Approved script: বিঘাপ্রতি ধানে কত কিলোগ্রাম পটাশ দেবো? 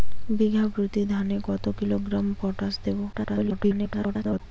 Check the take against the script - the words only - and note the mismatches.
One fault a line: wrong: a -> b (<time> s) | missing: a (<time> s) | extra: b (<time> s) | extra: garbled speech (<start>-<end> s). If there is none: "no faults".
extra: garbled speech (3.1-4.4 s)